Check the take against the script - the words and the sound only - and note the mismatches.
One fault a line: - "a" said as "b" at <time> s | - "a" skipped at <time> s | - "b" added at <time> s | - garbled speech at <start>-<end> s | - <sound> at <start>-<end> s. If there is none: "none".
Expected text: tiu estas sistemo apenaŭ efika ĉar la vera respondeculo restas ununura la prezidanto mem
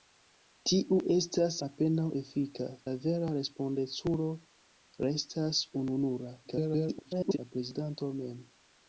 - "sistemo" skipped at 1.6 s
- "ĉar" skipped at 2.7 s
- garbled speech at 6.4-7.4 s